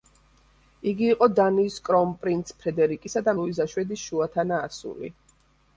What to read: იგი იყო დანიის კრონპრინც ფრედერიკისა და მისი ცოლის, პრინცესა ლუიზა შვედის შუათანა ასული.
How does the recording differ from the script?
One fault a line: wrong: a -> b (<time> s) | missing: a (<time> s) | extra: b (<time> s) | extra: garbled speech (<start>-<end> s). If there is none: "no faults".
missing: მისი ცოლის პრინცესა (3.4 s)